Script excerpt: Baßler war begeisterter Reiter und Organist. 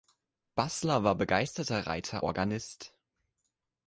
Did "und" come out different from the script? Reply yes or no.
yes